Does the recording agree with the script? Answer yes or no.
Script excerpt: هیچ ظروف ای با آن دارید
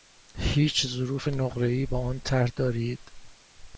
no